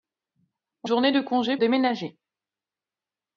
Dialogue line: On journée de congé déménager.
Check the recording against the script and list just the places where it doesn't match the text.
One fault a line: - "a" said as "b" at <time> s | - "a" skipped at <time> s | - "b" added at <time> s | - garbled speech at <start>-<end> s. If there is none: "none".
none